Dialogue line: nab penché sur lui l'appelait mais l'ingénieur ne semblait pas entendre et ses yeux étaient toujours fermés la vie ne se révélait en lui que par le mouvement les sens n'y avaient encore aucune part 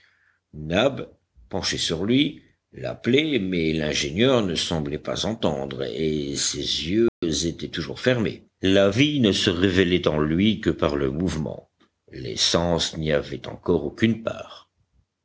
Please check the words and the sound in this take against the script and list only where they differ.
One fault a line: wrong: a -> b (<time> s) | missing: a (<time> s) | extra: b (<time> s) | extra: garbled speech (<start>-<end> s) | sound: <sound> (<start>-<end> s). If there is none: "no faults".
sound: dropout (7.1-7.2 s)